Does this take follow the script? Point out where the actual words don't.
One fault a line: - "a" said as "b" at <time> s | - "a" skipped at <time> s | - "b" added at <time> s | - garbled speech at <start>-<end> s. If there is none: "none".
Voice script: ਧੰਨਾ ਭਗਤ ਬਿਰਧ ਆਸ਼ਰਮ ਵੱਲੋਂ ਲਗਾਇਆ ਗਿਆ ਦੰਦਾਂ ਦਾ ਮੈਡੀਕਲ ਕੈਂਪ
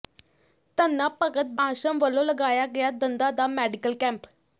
- "ਬਿਰਧ" skipped at 1.5 s